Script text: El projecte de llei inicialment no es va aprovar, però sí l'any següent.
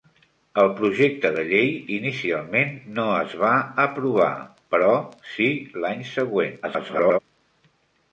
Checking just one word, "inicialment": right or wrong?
right